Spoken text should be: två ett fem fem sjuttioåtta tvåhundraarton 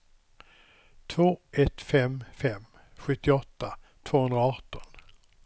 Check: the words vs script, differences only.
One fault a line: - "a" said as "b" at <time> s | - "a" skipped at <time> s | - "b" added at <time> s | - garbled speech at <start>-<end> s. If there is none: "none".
none